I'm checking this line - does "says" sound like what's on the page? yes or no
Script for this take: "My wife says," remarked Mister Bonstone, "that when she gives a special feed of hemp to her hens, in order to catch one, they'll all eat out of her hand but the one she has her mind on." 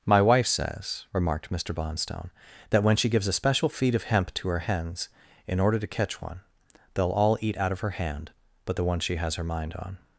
yes